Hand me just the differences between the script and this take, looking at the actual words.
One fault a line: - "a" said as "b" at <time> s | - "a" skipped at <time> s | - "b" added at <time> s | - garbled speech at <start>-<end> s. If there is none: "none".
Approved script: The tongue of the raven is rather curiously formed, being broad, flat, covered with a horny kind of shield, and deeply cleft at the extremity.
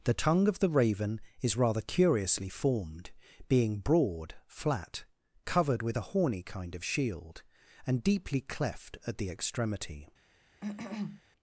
none